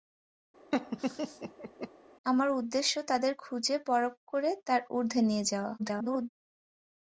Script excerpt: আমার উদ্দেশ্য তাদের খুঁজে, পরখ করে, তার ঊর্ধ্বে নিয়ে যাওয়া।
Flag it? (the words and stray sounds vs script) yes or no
yes